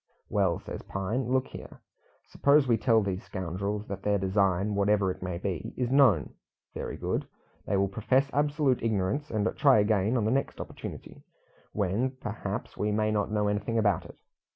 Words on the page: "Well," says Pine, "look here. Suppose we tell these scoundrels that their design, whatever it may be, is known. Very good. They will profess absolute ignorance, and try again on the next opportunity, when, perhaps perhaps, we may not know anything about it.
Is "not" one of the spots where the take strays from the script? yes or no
no